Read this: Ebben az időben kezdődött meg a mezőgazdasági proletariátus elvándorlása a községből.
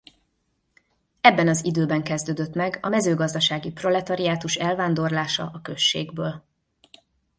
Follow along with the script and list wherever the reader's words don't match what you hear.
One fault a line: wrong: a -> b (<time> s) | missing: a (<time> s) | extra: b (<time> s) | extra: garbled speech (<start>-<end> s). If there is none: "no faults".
no faults